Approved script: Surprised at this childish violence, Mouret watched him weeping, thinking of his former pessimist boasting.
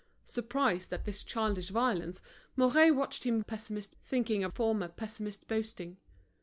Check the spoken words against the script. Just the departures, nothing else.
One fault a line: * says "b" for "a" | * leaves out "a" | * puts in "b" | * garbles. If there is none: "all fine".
* says "pessimist" for "weeping"
* leaves out "his"